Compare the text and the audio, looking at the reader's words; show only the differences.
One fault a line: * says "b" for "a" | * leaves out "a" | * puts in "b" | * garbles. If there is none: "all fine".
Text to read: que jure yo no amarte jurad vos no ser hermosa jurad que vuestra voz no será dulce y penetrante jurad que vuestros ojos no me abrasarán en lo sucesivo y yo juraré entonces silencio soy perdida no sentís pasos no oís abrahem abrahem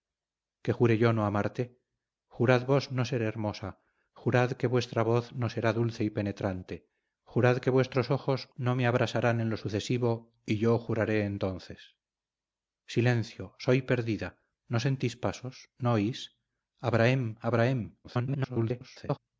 * garbles